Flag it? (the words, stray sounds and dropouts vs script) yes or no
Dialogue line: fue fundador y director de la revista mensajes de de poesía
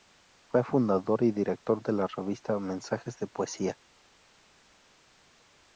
yes